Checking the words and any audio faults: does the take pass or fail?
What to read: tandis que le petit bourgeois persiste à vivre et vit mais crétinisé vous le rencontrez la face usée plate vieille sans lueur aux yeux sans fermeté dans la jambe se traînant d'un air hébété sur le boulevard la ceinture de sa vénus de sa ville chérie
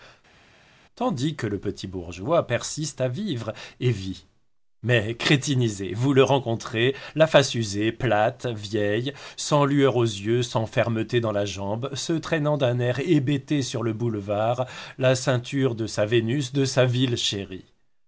pass